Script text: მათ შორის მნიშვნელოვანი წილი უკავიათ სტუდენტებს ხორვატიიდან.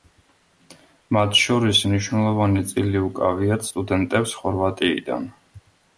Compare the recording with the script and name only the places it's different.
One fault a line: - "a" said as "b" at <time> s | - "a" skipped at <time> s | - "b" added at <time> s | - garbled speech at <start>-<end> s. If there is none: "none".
none